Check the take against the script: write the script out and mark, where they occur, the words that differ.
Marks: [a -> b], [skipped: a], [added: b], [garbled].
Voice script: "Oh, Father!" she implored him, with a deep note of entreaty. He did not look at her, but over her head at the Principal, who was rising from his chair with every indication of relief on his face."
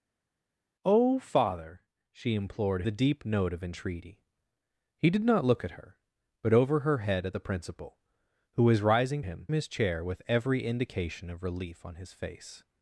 "Oh, Father!" she implored [skipped: him, with] a deep note of entreaty. He did not look at her, but over her head at the Principal, who was rising [from -> him] his chair with every indication of relief on his face."